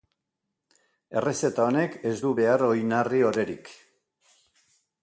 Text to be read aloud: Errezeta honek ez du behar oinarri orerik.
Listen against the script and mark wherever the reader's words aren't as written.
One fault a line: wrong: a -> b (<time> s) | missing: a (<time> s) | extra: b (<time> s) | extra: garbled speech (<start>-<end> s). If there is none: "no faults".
no faults